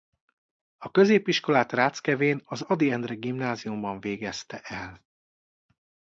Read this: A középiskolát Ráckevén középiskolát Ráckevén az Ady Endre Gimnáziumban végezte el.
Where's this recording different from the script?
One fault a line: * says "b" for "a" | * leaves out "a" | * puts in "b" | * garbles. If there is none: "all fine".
* leaves out "középiskolát Ráckevén"